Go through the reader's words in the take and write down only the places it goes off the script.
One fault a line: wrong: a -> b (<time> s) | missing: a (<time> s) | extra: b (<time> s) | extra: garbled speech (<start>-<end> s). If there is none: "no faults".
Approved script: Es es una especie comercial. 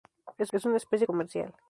no faults